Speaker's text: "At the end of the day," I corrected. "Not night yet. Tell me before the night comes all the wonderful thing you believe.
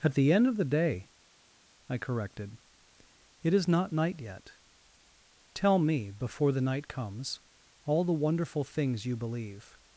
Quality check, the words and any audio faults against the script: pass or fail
fail